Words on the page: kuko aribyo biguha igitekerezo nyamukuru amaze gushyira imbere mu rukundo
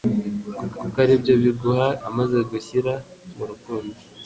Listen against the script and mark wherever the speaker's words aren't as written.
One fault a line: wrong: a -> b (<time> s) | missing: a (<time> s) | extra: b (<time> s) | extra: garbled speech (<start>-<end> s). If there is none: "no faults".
extra: kuko (0.8 s)
missing: igitekerezo nyamukuru (1.9 s)
missing: imbere (2.9 s)